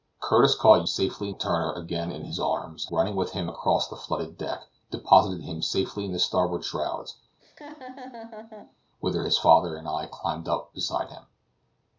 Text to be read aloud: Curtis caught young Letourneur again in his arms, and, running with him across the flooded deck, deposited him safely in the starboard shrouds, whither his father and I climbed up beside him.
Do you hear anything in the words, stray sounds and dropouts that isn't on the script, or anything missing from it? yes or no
yes